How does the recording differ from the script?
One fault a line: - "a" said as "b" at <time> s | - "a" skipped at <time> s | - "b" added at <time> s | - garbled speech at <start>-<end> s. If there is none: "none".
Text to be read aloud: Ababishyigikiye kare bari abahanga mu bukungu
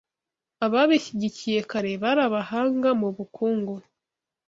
none